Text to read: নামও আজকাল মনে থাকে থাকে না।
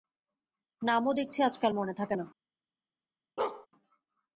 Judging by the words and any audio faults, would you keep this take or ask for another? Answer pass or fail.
fail